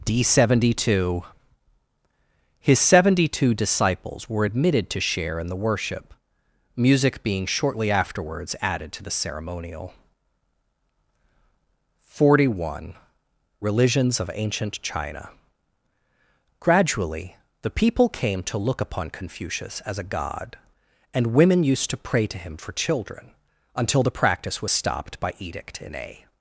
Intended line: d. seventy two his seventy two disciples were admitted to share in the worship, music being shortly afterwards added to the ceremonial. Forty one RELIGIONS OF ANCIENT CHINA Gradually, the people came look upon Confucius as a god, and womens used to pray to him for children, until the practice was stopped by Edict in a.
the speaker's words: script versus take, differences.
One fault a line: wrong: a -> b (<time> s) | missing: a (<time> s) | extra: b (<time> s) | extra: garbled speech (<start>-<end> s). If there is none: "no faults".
extra: to (18.4 s)
wrong: womens -> women (21.3 s)